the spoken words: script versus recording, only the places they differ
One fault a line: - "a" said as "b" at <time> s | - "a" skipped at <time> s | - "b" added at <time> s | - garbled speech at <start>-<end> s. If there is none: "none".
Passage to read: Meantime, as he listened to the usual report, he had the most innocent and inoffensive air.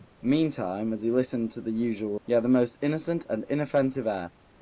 - "report" skipped at 2.1 s